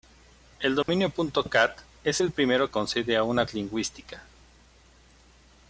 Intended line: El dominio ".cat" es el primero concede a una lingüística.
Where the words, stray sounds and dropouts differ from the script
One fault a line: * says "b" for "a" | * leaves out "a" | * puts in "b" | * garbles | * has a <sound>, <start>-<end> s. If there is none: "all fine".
* has a dropout, 0.8-0.9 s